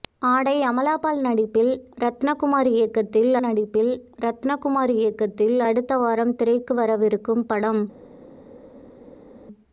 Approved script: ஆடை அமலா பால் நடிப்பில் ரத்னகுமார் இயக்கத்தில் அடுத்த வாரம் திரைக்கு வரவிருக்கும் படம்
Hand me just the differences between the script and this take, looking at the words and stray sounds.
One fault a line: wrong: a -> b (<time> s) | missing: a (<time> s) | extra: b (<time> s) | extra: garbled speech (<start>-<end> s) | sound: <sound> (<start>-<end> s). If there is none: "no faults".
extra: நடிப்பில் ரத்னகுமார் இயக்கத்தில் (3.4 s)